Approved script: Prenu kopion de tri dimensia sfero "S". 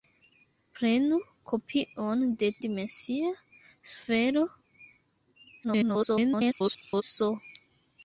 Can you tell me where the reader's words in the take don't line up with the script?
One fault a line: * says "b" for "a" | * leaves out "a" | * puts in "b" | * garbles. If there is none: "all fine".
* leaves out "tri"
* garbles